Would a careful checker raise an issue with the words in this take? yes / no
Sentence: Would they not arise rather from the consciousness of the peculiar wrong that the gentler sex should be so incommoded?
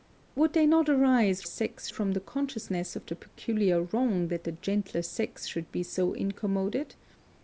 yes